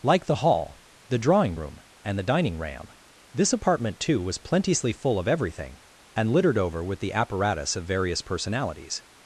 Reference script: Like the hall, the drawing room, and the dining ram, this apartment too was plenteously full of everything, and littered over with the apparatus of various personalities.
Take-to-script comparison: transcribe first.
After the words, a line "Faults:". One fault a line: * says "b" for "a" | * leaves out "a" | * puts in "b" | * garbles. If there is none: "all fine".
Like the hall, the drawing room, and the dining ram, this apartment too was plenteously full of everything, and littered over with the apparatus of various personalities.
Faults:
all fine